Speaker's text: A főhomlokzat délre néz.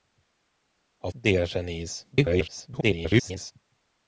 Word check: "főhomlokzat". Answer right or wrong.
wrong